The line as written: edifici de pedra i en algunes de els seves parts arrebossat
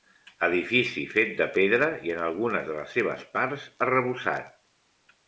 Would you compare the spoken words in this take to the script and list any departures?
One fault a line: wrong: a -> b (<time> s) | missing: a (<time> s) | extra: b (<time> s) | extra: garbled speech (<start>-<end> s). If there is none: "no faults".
extra: fet (1.1 s)
wrong: els -> les (2.8 s)